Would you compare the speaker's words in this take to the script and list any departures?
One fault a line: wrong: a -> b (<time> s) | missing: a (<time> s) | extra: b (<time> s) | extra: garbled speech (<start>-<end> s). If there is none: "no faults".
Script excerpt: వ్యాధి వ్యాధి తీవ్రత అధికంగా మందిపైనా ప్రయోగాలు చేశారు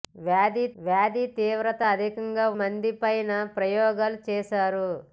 no faults